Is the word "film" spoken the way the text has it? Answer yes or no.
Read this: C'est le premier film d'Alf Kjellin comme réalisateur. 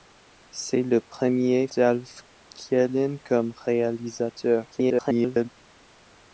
no